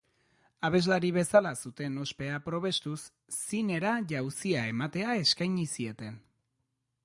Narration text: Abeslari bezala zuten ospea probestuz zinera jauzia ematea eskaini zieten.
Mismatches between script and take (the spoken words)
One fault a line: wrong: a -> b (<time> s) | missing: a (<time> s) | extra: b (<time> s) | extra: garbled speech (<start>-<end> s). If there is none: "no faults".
no faults